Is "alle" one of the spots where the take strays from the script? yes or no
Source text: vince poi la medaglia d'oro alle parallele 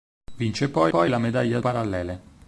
yes